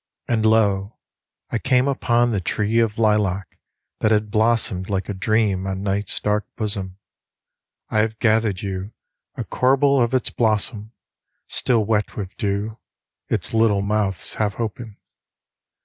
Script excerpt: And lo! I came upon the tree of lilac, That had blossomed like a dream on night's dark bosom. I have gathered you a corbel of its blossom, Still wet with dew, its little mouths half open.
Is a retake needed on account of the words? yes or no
no